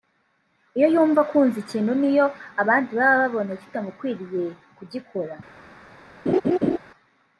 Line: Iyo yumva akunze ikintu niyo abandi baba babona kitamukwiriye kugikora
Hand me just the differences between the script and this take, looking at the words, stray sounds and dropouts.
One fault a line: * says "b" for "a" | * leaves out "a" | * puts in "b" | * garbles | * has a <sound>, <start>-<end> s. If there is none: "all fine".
* has a laugh, 6.3-6.8 s